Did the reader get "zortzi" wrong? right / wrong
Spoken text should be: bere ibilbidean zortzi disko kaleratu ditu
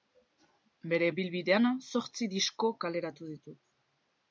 right